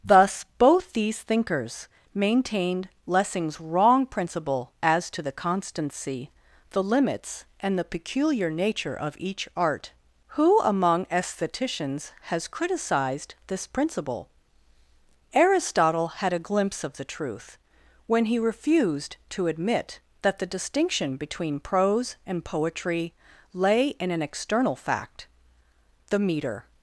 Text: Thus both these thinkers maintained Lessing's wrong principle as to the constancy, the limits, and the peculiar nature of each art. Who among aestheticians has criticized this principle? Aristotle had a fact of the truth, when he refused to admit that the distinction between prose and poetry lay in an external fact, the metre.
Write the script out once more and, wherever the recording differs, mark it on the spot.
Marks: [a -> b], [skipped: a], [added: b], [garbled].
Thus both these thinkers maintained Lessing's wrong principle as to the constancy, the limits, and the peculiar nature of each art. Who among aestheticians has criticized this principle? Aristotle had a [fact -> glimpse] of the truth, when he refused to admit that the distinction between prose and poetry lay in an external fact, the metre.